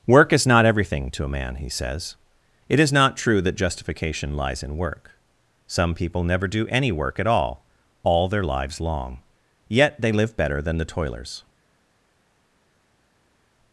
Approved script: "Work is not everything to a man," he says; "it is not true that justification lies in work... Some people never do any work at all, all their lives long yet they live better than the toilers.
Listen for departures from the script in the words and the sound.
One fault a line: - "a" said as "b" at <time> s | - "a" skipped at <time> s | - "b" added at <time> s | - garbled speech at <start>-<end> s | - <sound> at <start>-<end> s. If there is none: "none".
none